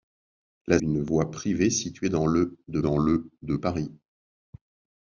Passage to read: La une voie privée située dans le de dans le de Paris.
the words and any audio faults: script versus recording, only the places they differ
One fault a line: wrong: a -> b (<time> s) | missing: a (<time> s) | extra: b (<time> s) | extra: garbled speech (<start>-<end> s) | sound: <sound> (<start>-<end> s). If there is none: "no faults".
no faults